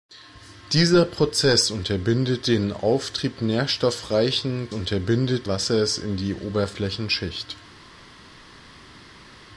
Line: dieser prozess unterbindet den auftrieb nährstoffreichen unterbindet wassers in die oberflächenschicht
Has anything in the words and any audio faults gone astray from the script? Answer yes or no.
no